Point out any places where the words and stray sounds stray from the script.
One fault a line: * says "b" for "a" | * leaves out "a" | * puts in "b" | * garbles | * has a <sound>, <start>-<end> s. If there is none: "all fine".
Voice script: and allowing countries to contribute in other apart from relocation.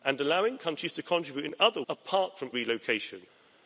all fine